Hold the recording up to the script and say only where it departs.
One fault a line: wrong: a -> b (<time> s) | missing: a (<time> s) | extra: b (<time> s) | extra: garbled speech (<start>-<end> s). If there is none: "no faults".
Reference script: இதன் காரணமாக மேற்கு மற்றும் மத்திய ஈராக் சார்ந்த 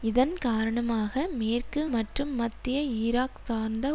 no faults